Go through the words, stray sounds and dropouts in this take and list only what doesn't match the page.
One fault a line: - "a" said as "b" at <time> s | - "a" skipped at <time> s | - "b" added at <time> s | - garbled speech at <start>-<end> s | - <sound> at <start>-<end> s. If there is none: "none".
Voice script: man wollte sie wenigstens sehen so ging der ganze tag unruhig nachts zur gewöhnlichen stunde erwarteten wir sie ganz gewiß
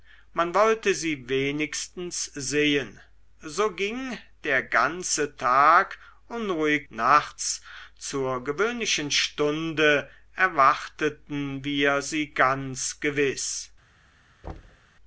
- thud at 14.4-14.9 s